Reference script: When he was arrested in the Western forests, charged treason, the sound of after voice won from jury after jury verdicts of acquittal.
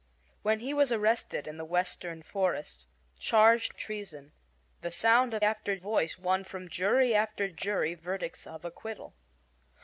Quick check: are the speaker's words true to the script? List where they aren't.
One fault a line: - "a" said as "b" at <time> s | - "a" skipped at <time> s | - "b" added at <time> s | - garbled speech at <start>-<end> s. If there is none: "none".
none